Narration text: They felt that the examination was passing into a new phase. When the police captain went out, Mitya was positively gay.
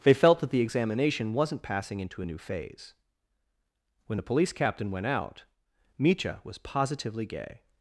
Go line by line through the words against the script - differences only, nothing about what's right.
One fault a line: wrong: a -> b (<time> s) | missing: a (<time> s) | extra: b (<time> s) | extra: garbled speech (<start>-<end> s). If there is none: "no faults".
wrong: was -> wasn't (1.3 s)